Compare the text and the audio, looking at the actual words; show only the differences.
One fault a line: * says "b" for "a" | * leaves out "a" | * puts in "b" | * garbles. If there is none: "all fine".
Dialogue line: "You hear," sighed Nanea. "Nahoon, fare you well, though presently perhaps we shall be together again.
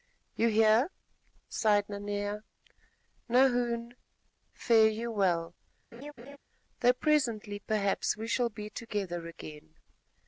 all fine